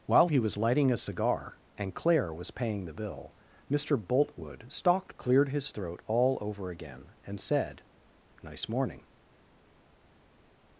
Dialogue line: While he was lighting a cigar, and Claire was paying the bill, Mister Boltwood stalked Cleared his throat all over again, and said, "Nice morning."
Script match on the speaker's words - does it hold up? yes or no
yes